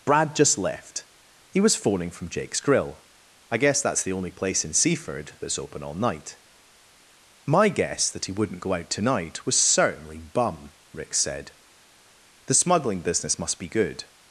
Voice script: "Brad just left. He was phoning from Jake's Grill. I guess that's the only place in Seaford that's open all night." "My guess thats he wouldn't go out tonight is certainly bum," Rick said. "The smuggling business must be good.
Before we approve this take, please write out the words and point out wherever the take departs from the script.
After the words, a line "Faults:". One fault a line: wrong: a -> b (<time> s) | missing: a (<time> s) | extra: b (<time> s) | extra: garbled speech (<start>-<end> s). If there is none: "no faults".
"Brad just left. He was phoning from Jake's Grill. I guess that's the only place in Seaford that's open all night." "My guess that he wouldn't go out tonight was certainly bum," Rick said. "The smuggling business must be good.
Faults:
wrong: thats -> that (8.1 s)
wrong: is -> was (9.4 s)